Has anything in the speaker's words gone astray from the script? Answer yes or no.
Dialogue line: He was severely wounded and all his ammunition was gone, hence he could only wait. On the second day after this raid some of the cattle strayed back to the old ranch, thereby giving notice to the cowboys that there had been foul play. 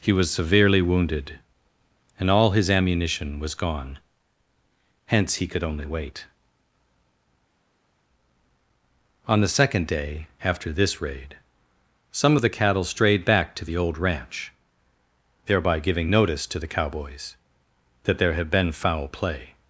no